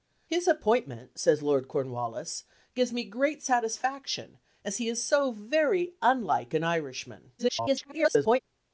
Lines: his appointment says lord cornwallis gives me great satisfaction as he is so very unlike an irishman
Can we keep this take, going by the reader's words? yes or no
no